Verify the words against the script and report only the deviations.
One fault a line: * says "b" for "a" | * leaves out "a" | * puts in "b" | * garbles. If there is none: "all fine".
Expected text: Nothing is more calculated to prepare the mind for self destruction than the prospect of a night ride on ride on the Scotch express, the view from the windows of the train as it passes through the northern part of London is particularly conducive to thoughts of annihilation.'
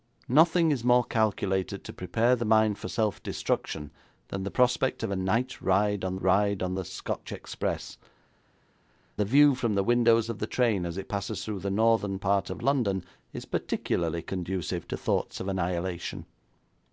all fine